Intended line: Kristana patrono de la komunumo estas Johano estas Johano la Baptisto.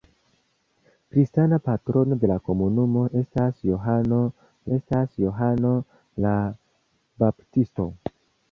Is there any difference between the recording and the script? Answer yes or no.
no